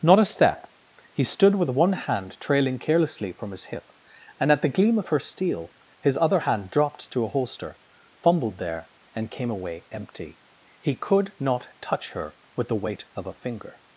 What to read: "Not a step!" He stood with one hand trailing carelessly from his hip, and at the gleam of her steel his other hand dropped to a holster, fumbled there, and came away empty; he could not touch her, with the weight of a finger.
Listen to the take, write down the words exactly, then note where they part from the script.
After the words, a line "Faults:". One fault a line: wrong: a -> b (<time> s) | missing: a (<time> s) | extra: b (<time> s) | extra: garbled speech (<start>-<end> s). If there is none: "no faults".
"Not a step!" He stood with one hand trailing carelessly from his hip, and at the gleam of her steel his other hand dropped to a holster, fumbled there, and came away empty; he could not touch her, with the weight of a finger.
Faults:
no faults